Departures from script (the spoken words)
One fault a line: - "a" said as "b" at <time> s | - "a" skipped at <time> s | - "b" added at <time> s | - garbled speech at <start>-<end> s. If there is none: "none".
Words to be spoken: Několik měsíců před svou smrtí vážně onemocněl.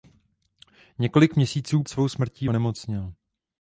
- "před" skipped at 1.8 s
- "vážně" skipped at 2.5 s